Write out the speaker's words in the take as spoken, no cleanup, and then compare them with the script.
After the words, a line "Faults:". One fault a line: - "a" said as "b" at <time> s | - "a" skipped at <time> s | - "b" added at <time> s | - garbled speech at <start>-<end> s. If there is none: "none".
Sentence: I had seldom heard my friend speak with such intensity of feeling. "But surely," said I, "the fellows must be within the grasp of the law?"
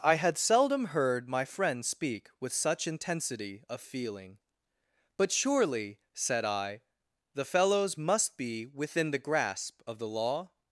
I had seldom heard my friend speak with such intensity of feeling. "But surely," said I, "the fellows must be within the grasp of the law?"
Faults:
none